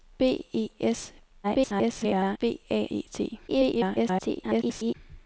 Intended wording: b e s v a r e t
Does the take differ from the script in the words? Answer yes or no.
yes